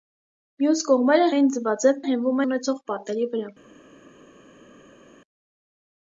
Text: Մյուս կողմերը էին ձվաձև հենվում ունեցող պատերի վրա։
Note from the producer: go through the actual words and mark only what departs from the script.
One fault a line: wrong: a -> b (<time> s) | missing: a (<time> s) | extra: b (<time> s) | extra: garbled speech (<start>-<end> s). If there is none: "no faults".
no faults